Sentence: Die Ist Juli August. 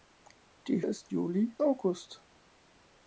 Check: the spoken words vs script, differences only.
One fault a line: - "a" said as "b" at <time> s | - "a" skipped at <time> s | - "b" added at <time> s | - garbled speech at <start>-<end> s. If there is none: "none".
none